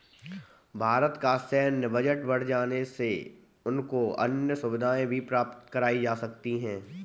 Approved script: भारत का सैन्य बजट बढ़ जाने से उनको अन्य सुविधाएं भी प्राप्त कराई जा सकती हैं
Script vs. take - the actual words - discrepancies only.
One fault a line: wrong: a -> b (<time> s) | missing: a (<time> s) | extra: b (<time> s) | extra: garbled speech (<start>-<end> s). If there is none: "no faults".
no faults